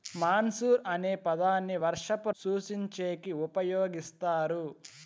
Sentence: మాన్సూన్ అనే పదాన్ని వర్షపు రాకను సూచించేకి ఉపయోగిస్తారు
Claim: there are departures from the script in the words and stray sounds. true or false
true